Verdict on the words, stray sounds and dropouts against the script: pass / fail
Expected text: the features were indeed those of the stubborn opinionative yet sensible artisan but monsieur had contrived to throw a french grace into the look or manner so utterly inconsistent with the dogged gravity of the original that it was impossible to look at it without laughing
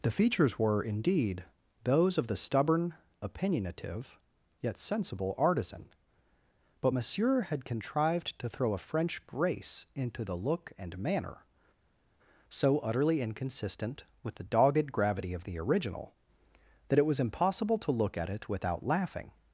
fail